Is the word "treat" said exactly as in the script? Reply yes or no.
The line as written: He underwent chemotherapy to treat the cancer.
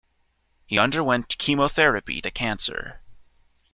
no